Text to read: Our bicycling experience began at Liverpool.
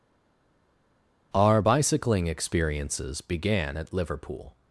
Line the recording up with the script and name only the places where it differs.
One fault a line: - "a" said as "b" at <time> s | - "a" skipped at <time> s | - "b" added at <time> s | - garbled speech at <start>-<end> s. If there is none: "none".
- "experience" said as "experiences" at 2.3 s